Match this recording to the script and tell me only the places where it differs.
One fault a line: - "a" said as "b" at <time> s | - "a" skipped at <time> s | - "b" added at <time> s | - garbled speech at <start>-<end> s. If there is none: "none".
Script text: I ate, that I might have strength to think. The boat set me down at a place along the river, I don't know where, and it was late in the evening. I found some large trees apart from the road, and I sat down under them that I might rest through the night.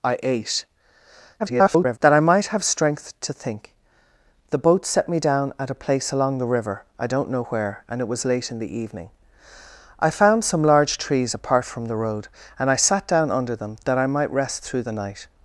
- garbled speech at 1.4-2.0 s